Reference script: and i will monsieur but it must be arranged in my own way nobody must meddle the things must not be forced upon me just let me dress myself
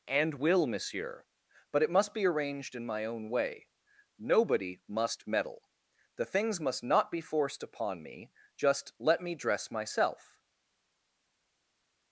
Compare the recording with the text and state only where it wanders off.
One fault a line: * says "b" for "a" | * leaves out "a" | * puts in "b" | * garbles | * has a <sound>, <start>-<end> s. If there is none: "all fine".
* leaves out "i"